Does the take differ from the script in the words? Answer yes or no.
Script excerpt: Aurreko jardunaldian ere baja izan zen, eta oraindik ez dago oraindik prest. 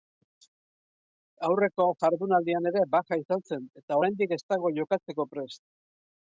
yes